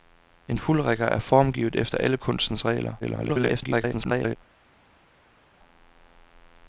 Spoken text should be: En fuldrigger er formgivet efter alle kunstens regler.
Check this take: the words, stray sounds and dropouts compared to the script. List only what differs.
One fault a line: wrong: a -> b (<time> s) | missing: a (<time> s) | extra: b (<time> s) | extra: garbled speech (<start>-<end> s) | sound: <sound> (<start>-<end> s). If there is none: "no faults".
extra: garbled speech (3.0-4.4 s)